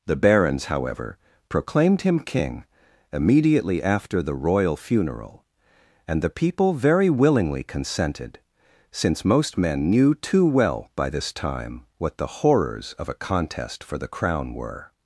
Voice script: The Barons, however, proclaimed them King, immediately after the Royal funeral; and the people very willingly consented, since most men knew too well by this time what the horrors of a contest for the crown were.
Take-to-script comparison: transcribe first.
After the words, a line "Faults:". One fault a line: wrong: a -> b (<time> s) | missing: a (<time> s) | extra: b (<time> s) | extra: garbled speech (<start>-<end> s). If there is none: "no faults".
The Barons, however, proclaimed him King, immediately after the Royal funeral; and the people very willingly consented, since most men knew too well by this time what the horrors of a contest for the crown were.
Faults:
wrong: them -> him (2.0 s)